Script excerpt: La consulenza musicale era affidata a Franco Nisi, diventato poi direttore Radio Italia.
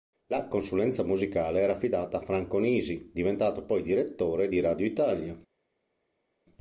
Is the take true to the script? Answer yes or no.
no